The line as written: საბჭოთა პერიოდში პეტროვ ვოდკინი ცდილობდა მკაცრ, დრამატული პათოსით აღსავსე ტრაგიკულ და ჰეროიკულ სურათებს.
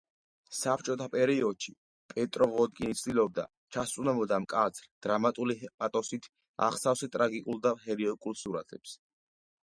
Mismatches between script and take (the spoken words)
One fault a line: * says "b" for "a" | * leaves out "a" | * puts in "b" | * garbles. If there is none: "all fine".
* puts in "ჩასწვდომოდა"